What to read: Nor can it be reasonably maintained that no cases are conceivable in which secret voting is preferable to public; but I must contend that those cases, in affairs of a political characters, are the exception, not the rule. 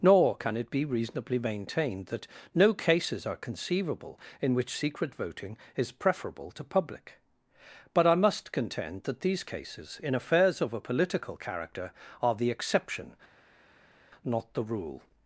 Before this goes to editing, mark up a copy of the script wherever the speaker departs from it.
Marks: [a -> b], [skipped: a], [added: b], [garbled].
Nor can it be reasonably maintained that no cases are conceivable in which secret voting is preferable to public; but I must contend that [those -> these] cases, in affairs of a political [characters, -> character] are the exception, not the rule.